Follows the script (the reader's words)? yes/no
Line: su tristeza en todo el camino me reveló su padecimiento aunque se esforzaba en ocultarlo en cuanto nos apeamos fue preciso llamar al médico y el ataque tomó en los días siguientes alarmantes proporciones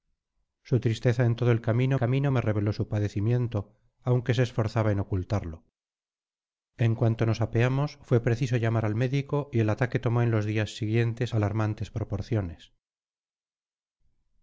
no